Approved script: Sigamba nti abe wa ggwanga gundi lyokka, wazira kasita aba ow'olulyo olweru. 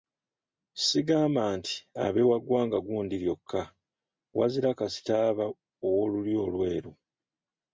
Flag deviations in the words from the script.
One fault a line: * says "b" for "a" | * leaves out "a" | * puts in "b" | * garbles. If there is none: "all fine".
all fine